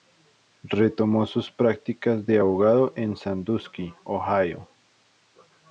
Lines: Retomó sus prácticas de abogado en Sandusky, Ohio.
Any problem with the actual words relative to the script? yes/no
no